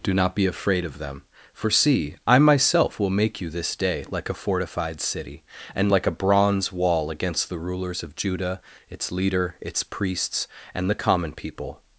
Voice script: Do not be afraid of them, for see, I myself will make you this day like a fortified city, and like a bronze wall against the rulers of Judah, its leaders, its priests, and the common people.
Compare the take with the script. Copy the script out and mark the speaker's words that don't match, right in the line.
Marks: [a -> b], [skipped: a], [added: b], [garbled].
Do not be afraid of them, for see, I myself will make you this day like a fortified city, and like a bronze wall against the rulers of Judah, its [leaders, -> leader] its priests, and the common people.